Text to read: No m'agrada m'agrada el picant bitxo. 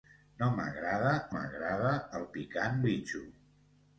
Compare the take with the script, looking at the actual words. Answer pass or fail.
pass